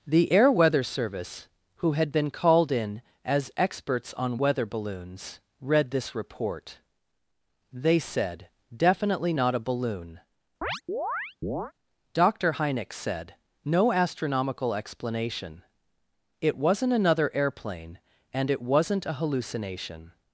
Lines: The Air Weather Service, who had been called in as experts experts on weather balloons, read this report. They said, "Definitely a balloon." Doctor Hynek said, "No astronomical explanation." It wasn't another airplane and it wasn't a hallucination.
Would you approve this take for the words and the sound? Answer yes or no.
no